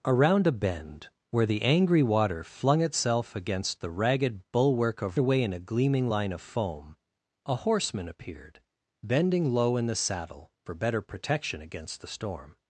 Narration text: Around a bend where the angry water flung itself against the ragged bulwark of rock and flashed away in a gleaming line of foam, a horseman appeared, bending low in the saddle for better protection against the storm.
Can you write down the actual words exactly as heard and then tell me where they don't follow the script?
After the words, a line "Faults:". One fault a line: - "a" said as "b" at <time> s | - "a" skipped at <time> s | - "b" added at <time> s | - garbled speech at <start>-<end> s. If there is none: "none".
Around a bend where the angry water flung itself against the ragged bulwark of away in a gleaming line of foam, a horseman appeared, bending low in the saddle for better protection against the storm.
Faults:
- "rock and flashed" skipped at 5.2 s